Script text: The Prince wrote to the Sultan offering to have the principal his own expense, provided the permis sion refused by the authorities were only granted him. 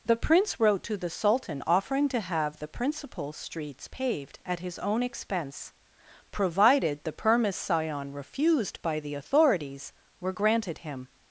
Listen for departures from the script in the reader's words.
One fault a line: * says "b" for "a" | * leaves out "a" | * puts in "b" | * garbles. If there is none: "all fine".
* puts in "streets paved at"
* leaves out "only"